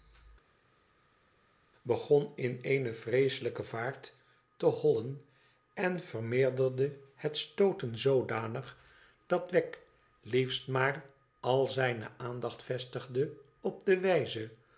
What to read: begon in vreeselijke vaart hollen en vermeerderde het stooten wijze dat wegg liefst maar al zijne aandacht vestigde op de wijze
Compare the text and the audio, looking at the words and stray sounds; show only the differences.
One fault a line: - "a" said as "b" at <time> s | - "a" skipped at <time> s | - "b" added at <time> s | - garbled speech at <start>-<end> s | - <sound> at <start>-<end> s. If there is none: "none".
- "eene" added at 2.6 s
- "te" added at 4.6 s
- "wijze" said as "zoodanig" at 8.0 s